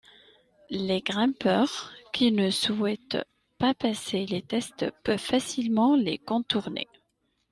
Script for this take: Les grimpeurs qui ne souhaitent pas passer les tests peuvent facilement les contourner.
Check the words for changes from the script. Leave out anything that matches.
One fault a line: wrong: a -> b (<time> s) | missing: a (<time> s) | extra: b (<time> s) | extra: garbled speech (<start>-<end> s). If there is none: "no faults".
no faults